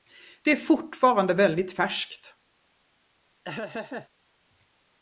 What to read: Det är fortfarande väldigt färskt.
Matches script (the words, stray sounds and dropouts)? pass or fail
fail